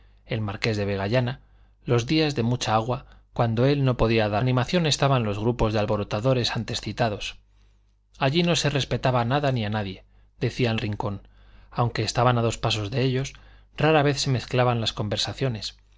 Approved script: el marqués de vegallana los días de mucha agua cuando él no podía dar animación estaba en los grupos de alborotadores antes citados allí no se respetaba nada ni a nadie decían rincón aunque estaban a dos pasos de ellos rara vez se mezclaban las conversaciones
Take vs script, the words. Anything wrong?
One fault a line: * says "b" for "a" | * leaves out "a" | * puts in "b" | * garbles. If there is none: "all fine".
all fine